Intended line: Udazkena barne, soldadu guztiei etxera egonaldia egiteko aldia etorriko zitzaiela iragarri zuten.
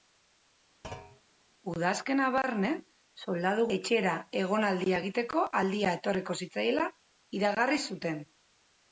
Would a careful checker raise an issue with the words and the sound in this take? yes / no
yes